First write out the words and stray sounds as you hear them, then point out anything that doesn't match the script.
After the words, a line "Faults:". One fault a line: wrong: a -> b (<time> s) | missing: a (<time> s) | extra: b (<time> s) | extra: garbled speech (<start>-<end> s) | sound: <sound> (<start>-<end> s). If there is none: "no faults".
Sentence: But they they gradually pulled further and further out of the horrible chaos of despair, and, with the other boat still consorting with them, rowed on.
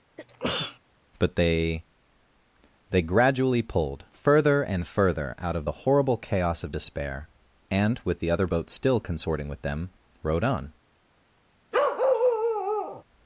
But they they gradually pulled further and further out of the horrible chaos of despair, and, with the other boat still consorting with them, rowed on.
Faults:
sound: sneeze (0.2-0.8 s)
sound: bark (11.7-13.0 s)